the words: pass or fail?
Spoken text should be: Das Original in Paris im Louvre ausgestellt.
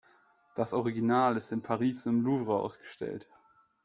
fail